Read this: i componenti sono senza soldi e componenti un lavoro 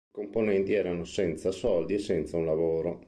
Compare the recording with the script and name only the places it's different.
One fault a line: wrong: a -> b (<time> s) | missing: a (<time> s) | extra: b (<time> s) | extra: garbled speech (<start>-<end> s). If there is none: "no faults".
wrong: sono -> erano (0.7 s)
wrong: componenti -> senza (2.0 s)